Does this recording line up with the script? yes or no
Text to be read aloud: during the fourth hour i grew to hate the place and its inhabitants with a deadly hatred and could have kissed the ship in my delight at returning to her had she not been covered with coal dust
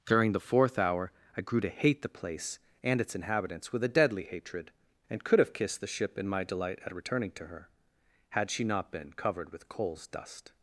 no